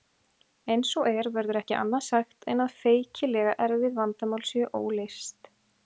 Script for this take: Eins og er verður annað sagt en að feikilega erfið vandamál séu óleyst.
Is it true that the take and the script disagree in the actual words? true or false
true